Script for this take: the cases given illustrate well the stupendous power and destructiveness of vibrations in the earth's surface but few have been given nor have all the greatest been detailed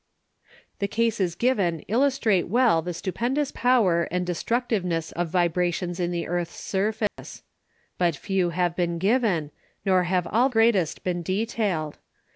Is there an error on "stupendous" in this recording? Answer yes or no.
no